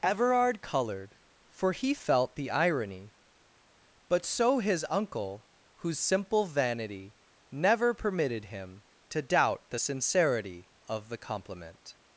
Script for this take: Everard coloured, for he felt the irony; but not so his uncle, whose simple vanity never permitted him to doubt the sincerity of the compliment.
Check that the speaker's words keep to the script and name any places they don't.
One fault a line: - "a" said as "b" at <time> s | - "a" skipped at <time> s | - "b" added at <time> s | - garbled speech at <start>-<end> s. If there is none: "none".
- "not" skipped at 4.2 s